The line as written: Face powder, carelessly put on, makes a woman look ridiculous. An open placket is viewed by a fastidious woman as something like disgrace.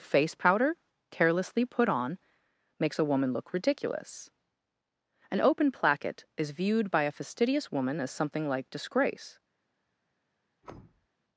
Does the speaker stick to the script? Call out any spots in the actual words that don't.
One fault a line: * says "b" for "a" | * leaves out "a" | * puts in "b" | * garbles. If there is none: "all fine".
all fine